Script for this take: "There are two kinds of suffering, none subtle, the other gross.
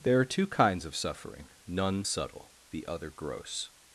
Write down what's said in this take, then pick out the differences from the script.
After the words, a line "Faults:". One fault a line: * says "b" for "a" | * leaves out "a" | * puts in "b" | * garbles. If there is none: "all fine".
"There are two kinds of suffering, none subtle, the other gross.
Faults:
all fine